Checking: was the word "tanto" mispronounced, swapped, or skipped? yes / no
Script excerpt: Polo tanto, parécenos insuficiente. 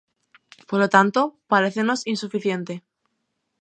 no